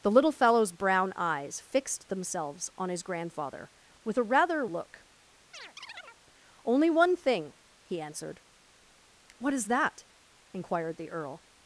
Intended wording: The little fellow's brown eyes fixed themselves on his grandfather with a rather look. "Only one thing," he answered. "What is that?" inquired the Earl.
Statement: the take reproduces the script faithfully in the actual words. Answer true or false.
true